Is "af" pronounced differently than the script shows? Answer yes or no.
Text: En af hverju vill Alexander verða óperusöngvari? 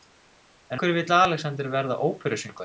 yes